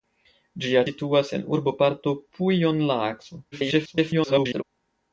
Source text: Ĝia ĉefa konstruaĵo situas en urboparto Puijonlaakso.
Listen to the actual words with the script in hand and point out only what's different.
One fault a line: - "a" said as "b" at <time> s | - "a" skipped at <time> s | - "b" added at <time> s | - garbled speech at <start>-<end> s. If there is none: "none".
- "ĉefa konstruaĵo" skipped at 0.8 s
- garbled speech at 3.5-4.6 s